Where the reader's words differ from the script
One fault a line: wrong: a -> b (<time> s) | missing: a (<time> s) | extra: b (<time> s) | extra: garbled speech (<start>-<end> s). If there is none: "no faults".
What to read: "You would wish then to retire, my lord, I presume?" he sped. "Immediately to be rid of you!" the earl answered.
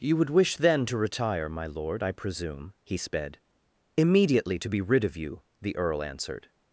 no faults